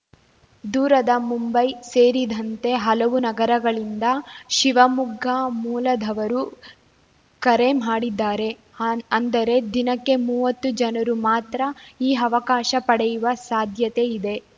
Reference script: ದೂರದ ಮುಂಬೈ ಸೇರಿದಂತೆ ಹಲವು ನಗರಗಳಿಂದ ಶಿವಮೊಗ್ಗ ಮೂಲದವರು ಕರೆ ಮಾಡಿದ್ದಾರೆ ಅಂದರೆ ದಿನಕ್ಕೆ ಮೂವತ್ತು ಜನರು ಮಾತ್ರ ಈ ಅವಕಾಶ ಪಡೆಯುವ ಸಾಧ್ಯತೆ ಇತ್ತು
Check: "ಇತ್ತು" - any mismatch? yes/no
yes